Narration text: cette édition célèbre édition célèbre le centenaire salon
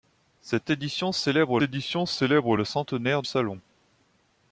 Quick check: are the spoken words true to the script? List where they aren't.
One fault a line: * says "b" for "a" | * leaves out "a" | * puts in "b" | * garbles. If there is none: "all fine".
all fine